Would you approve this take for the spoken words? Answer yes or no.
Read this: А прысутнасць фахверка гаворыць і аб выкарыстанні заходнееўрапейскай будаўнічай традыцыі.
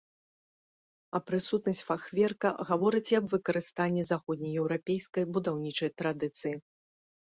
yes